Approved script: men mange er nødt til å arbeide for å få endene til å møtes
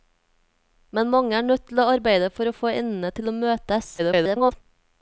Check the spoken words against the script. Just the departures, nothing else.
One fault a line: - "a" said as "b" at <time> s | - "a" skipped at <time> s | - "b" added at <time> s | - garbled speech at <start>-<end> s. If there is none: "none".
- garbled speech at 4.0-4.5 s